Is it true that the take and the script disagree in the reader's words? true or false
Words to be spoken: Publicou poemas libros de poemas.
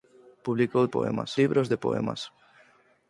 false